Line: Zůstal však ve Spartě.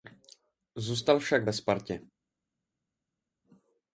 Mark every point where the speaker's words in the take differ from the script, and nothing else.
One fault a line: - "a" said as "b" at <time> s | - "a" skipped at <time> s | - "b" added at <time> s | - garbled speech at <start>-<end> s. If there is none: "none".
none